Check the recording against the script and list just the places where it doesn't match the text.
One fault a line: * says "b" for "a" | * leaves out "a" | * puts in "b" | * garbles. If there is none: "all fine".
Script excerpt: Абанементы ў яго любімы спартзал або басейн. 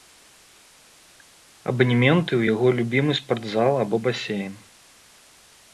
all fine